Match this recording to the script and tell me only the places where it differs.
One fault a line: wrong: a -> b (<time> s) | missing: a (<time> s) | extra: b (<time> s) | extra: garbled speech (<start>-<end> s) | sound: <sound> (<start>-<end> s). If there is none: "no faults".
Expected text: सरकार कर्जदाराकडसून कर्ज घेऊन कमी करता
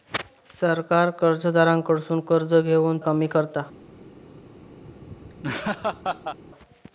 sound: laugh (4.8-6.4 s)